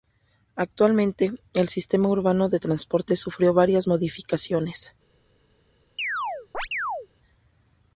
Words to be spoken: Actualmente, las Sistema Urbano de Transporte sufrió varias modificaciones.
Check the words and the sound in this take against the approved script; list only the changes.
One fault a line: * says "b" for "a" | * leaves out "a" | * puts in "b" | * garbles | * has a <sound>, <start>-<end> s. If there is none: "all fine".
* says "el" for "las"
* has a chirp, 6.0-7.1 s